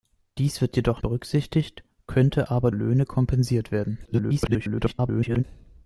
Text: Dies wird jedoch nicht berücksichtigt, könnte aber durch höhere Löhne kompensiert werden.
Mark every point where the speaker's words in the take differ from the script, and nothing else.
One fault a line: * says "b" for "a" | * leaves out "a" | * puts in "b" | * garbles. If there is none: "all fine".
* leaves out "nicht"
* leaves out "durch höhere"
* garbles